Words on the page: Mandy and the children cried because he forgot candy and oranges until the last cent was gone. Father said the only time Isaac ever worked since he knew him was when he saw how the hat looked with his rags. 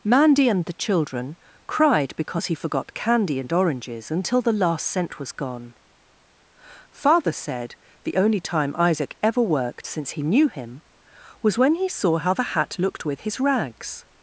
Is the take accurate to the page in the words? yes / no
yes